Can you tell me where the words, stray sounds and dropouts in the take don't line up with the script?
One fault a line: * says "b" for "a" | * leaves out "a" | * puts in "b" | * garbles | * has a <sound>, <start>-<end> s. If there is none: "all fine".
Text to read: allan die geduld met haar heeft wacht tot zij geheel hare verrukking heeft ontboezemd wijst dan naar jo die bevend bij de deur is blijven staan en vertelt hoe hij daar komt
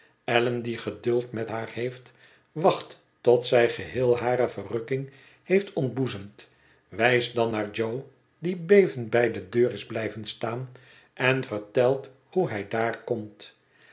all fine